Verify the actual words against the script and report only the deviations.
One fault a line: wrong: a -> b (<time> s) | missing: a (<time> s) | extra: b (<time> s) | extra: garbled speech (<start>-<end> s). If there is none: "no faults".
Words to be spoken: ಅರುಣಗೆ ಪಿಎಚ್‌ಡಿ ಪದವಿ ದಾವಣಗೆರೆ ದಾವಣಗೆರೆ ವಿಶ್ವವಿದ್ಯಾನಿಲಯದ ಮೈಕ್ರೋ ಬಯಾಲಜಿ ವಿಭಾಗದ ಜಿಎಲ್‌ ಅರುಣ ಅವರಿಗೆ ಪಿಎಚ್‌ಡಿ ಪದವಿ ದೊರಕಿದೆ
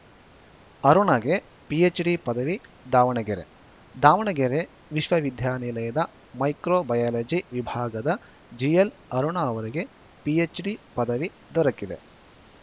no faults